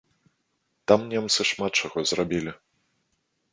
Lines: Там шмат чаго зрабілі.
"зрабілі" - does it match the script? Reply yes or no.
yes